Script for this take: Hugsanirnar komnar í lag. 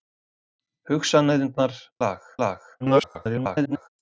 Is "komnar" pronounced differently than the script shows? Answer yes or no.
yes